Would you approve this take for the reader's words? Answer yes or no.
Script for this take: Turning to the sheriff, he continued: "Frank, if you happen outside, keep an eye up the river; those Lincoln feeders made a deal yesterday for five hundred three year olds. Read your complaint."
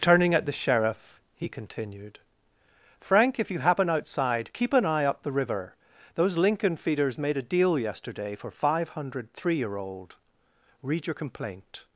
no